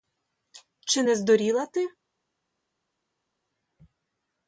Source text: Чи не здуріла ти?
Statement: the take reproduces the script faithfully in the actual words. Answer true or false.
true